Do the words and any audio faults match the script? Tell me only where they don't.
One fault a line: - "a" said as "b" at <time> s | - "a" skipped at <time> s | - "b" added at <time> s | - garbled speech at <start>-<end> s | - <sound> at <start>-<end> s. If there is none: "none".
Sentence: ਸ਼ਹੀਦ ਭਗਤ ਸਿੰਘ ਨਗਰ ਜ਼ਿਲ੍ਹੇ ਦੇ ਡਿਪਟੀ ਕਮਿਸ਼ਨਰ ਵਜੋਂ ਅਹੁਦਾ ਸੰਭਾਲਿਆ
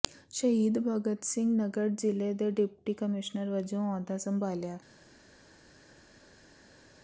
none